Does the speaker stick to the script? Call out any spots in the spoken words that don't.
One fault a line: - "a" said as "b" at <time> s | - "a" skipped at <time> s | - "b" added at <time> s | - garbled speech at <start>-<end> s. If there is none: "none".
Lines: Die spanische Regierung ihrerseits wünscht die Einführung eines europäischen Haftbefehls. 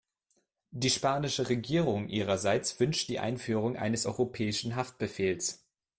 none